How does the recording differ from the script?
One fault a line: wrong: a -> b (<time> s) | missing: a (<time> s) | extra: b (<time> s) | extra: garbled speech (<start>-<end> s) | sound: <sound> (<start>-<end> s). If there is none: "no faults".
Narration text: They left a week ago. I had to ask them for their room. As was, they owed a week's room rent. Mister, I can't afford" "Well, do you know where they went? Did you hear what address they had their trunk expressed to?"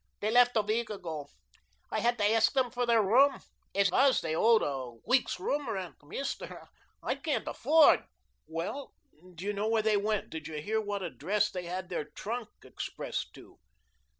no faults